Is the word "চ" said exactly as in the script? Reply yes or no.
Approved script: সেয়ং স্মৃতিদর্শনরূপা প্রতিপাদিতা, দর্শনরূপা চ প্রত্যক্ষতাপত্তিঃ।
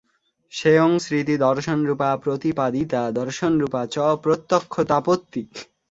yes